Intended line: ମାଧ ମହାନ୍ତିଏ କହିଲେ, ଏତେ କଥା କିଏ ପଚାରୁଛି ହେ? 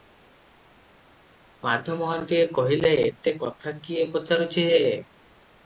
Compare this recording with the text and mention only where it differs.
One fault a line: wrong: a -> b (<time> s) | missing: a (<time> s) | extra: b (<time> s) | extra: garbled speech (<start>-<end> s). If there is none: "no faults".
no faults